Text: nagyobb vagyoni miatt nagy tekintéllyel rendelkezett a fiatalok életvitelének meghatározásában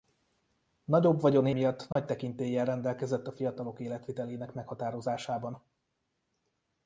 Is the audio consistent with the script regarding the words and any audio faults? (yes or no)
no